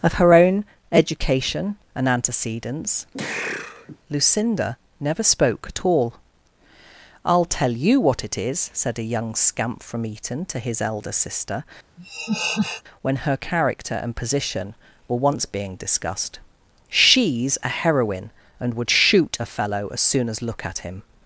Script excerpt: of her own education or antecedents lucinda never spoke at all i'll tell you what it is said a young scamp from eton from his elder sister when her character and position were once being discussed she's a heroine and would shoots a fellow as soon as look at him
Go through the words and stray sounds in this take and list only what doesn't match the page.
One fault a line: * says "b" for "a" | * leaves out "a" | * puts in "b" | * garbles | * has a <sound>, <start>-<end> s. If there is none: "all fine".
* says "and" for "or"
* has a sneeze, 3.1-4.0 s
* says "to" for "from"
* has a laugh, 12.0-12.8 s
* says "shoot" for "shoots"